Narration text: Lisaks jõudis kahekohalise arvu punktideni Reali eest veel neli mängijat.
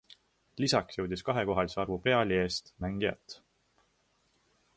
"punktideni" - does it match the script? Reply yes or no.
no